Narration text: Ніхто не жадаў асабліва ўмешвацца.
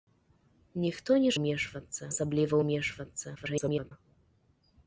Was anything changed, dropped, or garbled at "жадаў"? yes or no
yes